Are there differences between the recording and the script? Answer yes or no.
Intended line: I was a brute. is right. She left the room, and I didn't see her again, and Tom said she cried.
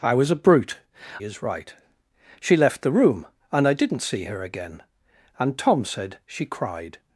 no